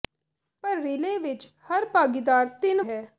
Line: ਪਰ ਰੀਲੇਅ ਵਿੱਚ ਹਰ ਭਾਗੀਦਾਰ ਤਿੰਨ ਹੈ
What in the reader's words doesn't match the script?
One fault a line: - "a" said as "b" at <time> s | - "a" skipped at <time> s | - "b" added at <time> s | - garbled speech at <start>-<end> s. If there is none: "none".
none